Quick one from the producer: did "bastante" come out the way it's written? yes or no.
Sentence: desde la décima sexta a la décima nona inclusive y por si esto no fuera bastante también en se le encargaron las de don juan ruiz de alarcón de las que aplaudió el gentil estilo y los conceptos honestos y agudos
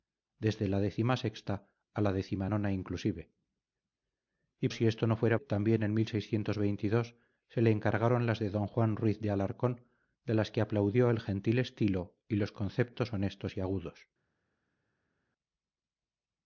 no